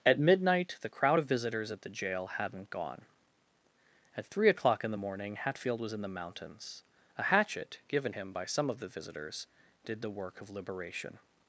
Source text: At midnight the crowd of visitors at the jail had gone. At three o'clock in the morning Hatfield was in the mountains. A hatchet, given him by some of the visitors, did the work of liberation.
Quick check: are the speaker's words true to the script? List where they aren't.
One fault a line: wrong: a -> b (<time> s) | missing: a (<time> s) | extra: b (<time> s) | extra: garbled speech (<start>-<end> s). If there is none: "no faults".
wrong: had -> hadn't (2.4 s)